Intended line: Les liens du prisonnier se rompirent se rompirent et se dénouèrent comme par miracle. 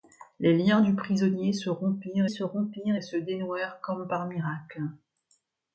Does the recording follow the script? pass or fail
pass